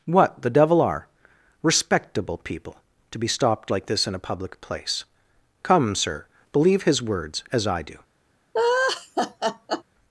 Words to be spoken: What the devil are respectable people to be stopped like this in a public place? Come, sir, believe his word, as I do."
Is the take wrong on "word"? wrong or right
wrong